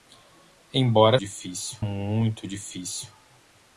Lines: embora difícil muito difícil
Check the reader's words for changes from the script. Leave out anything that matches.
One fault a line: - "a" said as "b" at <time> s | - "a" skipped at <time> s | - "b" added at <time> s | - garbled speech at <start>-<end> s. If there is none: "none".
none